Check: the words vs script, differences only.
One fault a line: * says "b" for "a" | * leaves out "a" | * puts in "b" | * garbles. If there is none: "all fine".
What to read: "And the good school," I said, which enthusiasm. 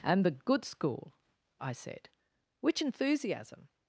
all fine